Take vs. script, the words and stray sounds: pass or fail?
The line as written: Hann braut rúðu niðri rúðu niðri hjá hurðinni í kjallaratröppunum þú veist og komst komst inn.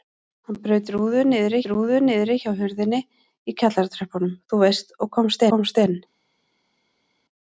pass